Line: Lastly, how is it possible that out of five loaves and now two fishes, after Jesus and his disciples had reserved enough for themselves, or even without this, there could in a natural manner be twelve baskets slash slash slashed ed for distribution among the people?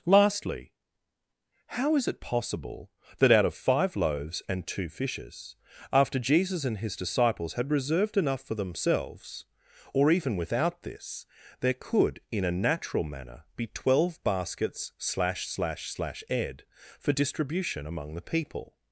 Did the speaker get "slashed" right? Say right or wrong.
wrong